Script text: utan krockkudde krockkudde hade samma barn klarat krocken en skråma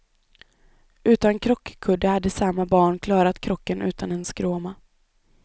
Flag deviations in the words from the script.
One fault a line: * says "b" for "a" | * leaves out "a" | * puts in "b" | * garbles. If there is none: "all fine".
* leaves out "krockkudde"
* puts in "utan"